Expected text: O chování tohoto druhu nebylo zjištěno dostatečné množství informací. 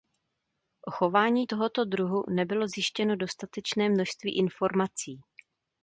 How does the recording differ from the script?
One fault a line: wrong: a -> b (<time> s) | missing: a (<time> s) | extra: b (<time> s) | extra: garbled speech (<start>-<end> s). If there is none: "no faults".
no faults